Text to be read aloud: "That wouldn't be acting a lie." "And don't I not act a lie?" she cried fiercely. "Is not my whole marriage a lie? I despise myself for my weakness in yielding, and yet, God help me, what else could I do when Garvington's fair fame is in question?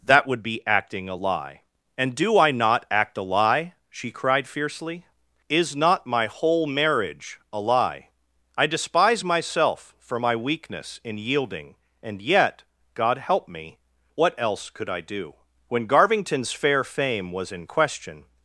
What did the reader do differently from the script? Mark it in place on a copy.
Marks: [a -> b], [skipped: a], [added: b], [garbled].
"That [wouldn't -> would] be acting a lie." "And [don't -> do] I not act a lie?" she cried fiercely. "Is not my whole marriage a lie? I despise myself for my weakness in yielding, and yet, God help me, what else could I do when Garvington's fair fame [is -> was] in question?